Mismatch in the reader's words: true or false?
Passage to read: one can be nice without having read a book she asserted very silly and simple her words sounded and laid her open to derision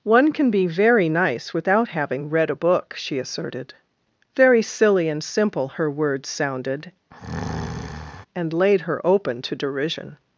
true